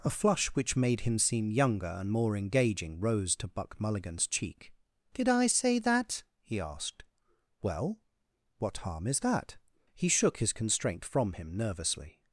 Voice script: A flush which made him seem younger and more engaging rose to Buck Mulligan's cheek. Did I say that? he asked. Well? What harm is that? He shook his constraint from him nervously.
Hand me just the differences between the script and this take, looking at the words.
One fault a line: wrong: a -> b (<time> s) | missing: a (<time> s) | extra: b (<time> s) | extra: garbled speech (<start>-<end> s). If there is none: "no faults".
no faults